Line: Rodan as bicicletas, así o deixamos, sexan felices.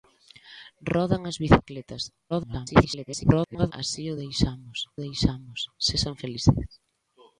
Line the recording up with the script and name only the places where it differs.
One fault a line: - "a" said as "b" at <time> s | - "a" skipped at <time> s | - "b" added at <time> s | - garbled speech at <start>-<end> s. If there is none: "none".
- garbled speech at 2.3-3.7 s
- "deixamos" added at 5.0 s